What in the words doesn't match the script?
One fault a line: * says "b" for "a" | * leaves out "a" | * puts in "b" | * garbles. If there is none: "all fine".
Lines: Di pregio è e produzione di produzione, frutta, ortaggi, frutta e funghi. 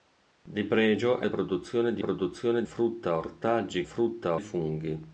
all fine